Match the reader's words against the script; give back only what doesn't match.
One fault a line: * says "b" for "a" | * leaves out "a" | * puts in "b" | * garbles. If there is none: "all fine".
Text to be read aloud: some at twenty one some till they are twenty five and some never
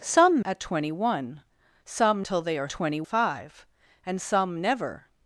all fine